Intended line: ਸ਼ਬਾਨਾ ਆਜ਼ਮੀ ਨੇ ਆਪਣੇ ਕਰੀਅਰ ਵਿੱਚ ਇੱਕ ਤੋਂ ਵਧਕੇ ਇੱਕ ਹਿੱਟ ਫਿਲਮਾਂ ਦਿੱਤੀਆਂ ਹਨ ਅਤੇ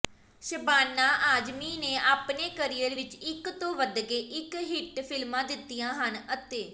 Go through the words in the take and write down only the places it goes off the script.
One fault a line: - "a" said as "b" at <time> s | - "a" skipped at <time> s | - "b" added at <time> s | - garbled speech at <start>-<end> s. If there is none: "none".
none